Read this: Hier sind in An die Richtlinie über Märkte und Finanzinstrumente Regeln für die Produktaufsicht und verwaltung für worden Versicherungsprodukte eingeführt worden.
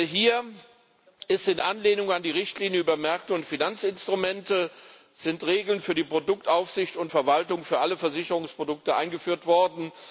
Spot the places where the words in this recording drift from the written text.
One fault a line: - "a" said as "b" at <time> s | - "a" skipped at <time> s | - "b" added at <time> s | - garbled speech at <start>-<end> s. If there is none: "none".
- "Anlehnung" added at 1.6 s
- "worden" said as "alle" at 7.8 s